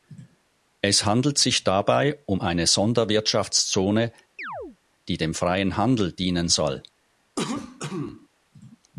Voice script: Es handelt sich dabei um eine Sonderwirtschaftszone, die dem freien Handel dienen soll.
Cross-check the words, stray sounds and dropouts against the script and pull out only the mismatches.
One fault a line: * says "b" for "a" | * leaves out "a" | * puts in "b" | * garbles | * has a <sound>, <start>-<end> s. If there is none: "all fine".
* has a chirp, 4.4-4.8 s
* has a cough, 7.4-8.3 s